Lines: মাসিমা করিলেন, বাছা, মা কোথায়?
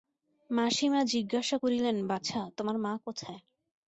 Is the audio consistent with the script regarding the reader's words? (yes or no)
no